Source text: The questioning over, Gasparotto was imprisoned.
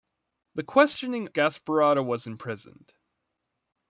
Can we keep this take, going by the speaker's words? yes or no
no